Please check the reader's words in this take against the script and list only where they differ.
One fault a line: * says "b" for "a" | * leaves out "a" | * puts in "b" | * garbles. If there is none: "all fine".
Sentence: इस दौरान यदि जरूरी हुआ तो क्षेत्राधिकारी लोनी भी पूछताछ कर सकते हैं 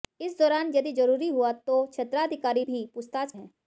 * leaves out "लोनी"
* leaves out "कर सकते"